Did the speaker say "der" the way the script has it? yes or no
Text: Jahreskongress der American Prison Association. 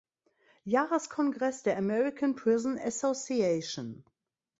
yes